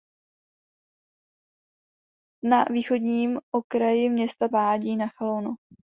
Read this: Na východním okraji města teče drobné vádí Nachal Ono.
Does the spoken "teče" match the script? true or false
false